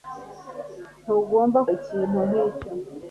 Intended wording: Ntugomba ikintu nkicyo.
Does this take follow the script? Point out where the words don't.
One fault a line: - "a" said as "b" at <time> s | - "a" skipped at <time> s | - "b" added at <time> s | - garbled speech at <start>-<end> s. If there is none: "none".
none